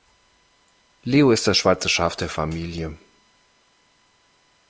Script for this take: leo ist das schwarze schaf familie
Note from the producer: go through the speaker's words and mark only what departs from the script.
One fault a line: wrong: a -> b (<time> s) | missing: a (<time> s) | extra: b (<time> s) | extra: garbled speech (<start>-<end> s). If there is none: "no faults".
extra: der (2.1 s)